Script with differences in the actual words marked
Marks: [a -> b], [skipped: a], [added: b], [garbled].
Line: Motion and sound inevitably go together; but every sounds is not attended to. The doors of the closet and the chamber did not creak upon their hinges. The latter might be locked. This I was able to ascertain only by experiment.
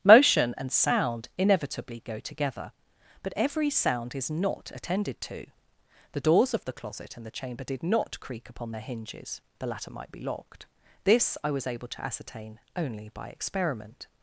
Motion and sound inevitably go together; but every [sounds -> sound] is not attended to. The doors of the closet and the chamber did not creak upon their hinges. The latter might be locked. This I was able to ascertain only by experiment.